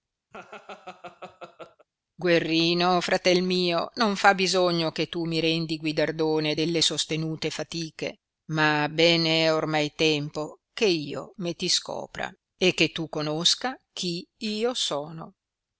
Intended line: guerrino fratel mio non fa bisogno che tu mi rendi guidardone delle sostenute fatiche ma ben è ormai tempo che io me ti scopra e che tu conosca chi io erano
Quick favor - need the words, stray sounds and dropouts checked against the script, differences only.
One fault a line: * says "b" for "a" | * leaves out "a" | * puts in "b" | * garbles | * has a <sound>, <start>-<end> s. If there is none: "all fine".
* has a laugh, 0.3-1.9 s
* says "sono" for "erano"